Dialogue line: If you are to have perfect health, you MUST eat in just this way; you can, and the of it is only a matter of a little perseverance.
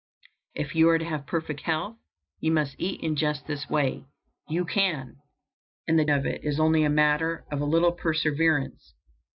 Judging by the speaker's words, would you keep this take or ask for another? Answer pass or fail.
pass